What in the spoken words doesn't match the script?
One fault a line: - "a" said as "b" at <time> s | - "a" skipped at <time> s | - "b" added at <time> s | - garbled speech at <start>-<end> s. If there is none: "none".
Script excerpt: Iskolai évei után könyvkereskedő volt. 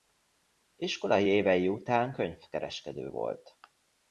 none